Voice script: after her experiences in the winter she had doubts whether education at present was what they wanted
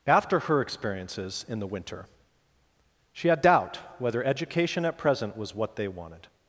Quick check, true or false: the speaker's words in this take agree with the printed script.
false